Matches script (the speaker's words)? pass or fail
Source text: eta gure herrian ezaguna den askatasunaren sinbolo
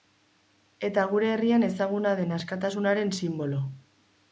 pass